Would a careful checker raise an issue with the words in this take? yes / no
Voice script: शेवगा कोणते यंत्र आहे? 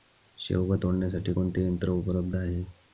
yes